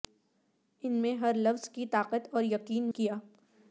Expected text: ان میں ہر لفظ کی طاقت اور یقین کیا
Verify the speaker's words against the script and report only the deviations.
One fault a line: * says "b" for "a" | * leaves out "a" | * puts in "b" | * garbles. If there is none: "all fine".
all fine